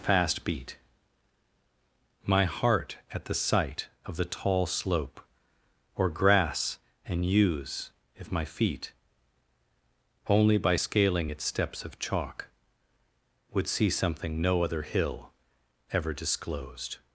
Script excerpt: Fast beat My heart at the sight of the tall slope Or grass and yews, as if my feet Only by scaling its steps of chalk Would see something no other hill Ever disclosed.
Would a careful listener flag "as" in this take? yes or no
yes